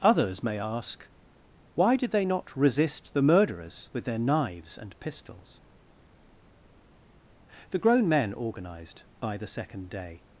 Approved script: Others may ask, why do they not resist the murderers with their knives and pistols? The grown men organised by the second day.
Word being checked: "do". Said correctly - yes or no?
no